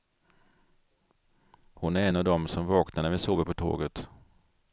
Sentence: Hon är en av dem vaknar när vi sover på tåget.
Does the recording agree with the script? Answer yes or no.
no